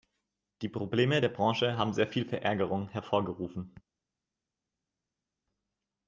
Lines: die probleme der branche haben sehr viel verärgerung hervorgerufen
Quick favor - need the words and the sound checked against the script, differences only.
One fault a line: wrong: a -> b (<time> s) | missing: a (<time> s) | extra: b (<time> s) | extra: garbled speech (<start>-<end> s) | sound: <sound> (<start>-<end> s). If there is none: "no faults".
no faults